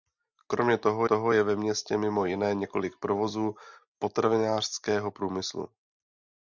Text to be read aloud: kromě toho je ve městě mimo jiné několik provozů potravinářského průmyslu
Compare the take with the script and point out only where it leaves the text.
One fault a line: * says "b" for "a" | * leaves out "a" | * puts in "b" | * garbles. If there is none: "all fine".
* puts in "toho"